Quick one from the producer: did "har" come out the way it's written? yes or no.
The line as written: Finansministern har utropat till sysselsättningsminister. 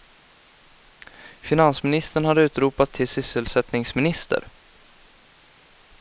yes